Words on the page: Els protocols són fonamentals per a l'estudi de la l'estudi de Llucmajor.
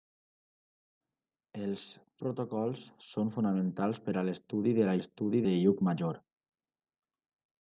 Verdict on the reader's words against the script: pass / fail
pass